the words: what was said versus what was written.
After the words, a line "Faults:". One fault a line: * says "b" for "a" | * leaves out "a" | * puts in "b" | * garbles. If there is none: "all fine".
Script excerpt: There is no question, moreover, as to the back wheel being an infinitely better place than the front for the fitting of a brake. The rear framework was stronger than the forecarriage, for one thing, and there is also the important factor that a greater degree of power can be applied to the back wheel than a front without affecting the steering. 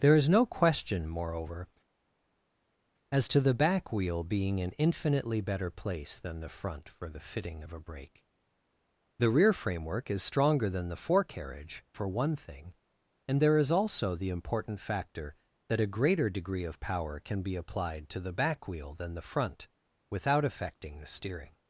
There is no question, moreover, as to the back wheel being an infinitely better place than the front for the fitting of a brake. The rear framework is stronger than the forecarriage, for one thing, and there is also the important factor that a greater degree of power can be applied to the back wheel than the front without affecting the steering.
Faults:
* says "is" for "was"
* says "the" for "a"